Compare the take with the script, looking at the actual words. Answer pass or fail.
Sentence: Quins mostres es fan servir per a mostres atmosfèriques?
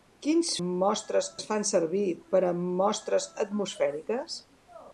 pass